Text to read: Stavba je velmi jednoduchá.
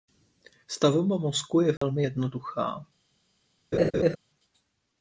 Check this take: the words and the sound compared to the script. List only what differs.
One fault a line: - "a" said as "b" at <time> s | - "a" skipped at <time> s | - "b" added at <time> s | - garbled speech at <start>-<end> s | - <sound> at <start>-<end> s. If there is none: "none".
- "mozku" added at 1.2 s
- dropout at 1.8-1.8 s
- laugh at 3.7-4.2 s